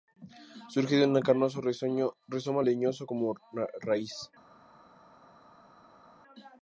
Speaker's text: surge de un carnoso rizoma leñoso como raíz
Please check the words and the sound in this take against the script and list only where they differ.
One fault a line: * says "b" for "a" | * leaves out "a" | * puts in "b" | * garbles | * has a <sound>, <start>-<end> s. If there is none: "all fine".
all fine